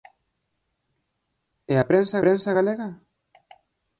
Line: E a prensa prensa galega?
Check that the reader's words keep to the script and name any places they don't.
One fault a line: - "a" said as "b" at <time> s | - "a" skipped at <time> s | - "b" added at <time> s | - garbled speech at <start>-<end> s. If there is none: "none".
none